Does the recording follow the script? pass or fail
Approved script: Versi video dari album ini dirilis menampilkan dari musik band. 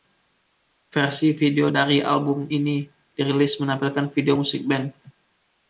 fail